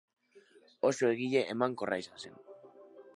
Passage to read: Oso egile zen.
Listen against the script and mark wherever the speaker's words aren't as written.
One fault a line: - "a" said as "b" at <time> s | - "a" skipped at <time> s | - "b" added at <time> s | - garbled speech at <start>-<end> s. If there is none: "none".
- "emankorra izan" added at 1.6 s